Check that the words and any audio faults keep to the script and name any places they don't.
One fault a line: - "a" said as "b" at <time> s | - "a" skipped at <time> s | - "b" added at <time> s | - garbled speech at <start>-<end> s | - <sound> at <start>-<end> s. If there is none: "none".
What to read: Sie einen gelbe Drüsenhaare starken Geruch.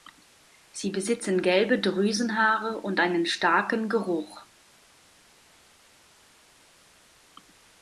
- "einen" said as "besitzen" at 0.9 s
- "und einen" added at 2.8 s